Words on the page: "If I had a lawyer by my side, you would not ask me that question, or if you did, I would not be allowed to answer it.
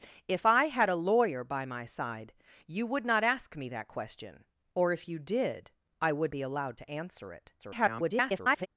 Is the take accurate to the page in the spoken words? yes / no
no